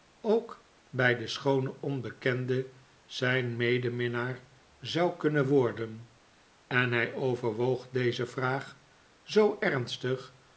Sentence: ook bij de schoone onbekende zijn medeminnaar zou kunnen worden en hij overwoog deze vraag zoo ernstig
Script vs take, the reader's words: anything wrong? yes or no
no